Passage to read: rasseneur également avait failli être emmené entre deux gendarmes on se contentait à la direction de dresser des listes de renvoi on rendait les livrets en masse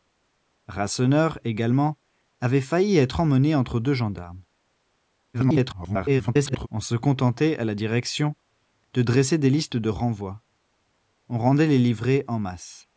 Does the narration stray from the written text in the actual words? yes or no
yes